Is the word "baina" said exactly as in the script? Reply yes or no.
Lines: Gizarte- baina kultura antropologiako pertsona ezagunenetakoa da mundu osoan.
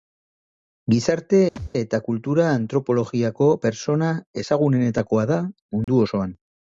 no